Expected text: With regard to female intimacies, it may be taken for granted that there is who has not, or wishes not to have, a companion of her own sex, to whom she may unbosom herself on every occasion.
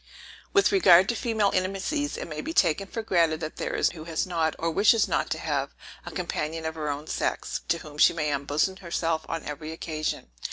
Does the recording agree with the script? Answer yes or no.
yes